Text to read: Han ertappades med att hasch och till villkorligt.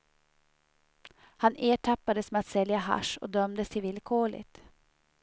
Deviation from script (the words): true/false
true